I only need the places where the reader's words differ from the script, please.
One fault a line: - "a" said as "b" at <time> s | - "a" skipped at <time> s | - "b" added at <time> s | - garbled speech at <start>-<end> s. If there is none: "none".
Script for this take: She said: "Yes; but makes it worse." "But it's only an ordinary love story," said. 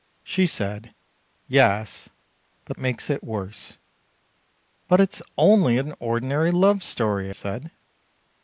none